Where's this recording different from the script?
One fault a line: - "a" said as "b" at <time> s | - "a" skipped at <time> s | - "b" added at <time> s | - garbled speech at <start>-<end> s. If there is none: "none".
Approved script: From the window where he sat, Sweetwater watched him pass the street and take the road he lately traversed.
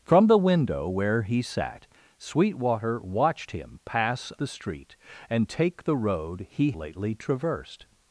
none